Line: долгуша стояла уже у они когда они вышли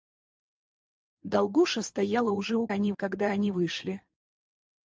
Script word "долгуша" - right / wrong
right